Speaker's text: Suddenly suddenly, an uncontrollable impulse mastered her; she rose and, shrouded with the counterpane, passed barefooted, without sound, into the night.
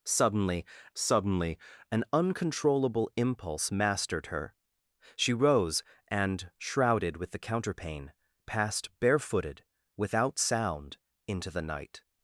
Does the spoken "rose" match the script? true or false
true